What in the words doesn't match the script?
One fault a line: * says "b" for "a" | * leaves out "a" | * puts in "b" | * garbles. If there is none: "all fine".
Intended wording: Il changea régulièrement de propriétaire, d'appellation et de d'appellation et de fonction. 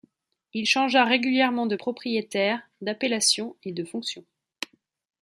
* leaves out "d'appellation et de"